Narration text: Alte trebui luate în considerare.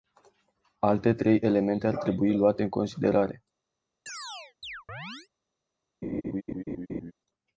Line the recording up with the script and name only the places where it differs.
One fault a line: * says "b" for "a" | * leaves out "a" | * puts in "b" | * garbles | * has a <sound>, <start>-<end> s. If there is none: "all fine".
* puts in "trei elemente ar"
* has a chirp, 4.1-5.3 s
* has a laugh, 6.0-7.1 s